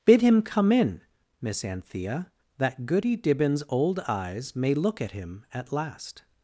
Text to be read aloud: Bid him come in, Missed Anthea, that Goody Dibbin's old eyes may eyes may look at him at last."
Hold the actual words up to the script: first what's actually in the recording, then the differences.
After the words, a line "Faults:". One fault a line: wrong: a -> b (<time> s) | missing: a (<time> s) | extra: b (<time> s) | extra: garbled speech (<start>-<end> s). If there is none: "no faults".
Bid him come in, Miss Anthea, that Goody Dibbin's old eyes may look at him at last."
Faults:
wrong: Missed -> Miss (1.4 s)
missing: eyes may (4.7 s)